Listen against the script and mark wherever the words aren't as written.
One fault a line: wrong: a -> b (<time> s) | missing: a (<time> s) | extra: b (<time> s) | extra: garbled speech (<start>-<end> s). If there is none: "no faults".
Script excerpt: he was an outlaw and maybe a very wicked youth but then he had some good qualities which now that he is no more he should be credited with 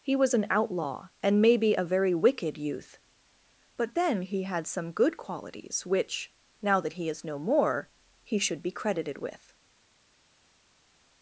no faults